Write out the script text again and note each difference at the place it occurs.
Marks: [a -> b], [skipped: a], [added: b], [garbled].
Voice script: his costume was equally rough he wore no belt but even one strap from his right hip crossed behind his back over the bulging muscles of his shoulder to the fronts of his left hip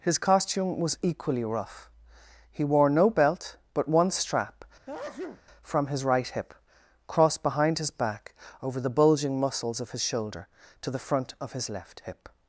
his costume was equally rough he wore no belt but [skipped: even] one strap from his right hip crossed behind his back over the bulging muscles of his shoulder to the [fronts -> front] of his left hip